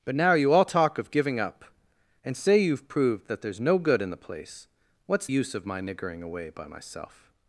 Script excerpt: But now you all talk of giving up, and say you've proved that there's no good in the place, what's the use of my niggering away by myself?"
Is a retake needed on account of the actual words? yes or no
yes